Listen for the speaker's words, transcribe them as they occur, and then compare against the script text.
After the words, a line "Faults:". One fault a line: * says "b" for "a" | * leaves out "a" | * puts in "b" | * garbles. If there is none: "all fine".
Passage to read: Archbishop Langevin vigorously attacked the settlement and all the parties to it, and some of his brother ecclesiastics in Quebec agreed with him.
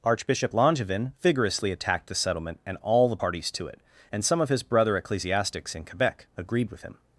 Archbishop Langevin vigorously attacked the settlement and all the parties to it, and some of his brother ecclesiastics in Quebec agreed with him.
Faults:
all fine